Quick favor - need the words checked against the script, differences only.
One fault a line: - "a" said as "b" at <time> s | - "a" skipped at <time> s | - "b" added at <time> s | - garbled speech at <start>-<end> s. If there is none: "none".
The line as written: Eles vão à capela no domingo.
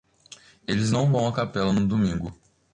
- "não" added at 0.9 s